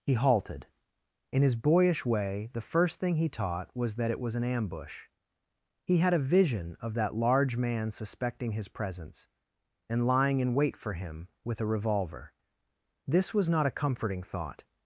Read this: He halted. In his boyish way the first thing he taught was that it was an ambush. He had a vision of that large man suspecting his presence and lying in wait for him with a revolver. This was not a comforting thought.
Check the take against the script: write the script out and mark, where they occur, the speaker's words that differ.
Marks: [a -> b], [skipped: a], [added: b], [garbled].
He halted. In his boyish way the first thing he taught was that it was an ambush. He had a vision of that large man suspecting his presence and lying in wait for him with a revolver. This was not a comforting thought.